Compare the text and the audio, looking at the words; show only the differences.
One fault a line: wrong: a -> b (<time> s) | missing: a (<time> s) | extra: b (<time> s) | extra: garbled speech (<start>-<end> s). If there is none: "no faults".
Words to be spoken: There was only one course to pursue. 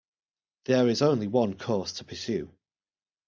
wrong: was -> is (0.9 s)